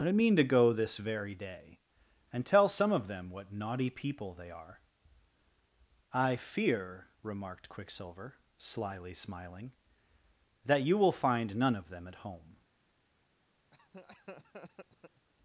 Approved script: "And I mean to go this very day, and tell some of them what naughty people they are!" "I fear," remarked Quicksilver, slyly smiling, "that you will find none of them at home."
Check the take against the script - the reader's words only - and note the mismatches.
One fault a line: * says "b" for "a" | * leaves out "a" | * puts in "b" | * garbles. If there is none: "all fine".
* says "But" for "And"